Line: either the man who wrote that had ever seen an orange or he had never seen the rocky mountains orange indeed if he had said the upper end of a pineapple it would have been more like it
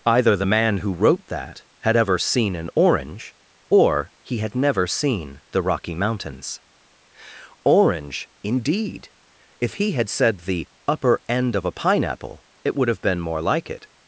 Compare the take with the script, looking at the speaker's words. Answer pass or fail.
pass